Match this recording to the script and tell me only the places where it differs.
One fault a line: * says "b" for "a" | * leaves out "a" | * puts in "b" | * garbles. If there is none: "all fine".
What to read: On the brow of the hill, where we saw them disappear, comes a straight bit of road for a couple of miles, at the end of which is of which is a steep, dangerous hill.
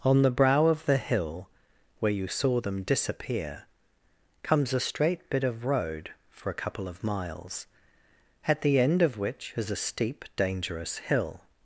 * says "you" for "we"
* leaves out "of which is"